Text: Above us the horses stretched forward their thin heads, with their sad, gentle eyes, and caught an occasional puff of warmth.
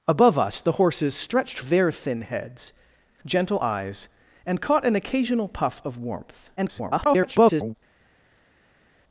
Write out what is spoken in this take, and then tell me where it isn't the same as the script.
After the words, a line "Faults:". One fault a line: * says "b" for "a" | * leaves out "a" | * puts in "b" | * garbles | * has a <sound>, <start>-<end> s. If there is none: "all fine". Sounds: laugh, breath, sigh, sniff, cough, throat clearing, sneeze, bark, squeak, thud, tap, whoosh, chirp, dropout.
Above us the horses stretched their thin heads, gentle eyes, and caught an occasional puff of warmth. [garbled]
Faults:
* leaves out "forward"
* leaves out "with their sad"
* garbles